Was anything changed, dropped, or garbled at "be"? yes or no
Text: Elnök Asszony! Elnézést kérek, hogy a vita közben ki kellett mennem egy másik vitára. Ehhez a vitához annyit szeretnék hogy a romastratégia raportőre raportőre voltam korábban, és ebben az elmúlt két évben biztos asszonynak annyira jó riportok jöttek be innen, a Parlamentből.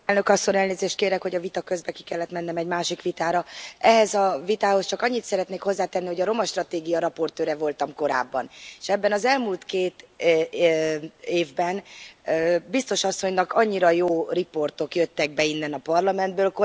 no